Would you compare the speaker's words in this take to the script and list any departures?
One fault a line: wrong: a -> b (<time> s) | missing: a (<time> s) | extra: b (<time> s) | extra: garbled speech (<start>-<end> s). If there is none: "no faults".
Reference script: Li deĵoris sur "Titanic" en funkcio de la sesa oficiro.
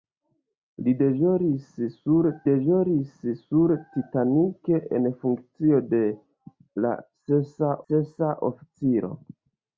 extra: deĵoris sur (2.5 s)
extra: sesa (7.9 s)